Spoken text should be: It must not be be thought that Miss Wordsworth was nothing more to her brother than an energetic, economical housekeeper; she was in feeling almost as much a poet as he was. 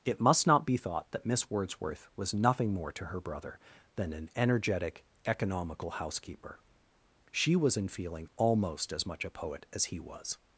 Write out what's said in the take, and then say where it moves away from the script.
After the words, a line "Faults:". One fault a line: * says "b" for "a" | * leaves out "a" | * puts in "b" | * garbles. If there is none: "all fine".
It must not be thought that Miss Wordsworth was nothing more to her brother than an energetic, economical housekeeper; she was in feeling almost as much a poet as he was.
Faults:
* leaves out "be"